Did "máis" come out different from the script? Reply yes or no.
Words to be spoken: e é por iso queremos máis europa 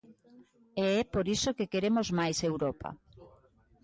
no